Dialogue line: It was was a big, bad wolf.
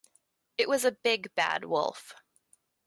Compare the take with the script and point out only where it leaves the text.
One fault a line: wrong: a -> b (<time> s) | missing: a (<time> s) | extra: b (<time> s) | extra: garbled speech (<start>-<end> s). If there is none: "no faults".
missing: was (0.8 s)